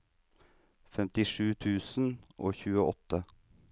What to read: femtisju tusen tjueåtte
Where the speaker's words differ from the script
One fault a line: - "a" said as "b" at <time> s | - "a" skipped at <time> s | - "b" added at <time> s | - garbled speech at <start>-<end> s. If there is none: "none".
- "og" added at 2.5 s